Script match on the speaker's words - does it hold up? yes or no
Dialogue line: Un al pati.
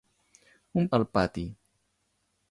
yes